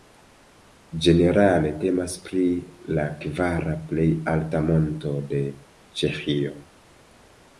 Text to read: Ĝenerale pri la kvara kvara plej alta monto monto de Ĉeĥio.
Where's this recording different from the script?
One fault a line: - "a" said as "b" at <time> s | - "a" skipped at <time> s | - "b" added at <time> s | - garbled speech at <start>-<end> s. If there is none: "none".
- "temas" added at 1.8 s
- "kvara" skipped at 3.8 s
- "monto" skipped at 5.1 s